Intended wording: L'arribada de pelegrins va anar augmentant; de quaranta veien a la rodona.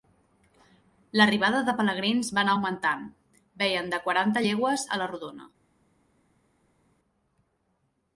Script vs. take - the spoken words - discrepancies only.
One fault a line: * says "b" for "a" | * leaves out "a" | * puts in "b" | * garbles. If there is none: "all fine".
* puts in "veien"
* says "llegües" for "veien"